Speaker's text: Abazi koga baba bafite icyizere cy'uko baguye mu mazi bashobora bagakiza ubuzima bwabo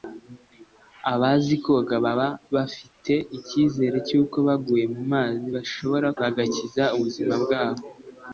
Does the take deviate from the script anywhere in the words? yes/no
no